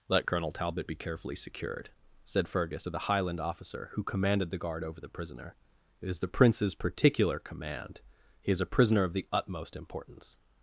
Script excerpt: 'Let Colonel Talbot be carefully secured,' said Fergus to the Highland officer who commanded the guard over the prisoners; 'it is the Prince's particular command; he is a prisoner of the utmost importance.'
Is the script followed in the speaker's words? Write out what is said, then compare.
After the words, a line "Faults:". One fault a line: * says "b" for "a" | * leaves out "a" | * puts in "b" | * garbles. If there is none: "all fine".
'Let Colonel Talbot be carefully secured,' said Fergus to the Highland officer who commanded the guard over the prisoner; 'it is the Prince's particular command; he is a prisoner of the utmost importance.'
Faults:
* says "prisoner" for "prisoners"